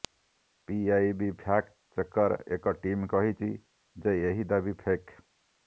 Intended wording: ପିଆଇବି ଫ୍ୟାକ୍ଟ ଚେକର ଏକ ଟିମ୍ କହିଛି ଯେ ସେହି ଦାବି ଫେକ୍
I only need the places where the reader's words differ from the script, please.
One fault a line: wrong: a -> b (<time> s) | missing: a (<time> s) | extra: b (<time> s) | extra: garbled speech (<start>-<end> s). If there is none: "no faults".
wrong: ସେହି -> ଏହି (4.3 s)